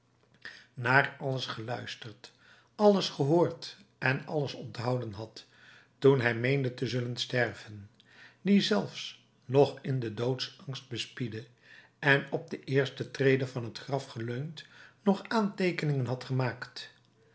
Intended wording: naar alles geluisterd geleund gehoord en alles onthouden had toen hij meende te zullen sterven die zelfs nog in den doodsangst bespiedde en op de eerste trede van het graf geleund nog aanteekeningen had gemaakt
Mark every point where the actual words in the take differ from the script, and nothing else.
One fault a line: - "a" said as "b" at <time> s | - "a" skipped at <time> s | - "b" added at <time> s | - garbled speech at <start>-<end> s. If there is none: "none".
- "geleund" said as "alles" at 2.8 s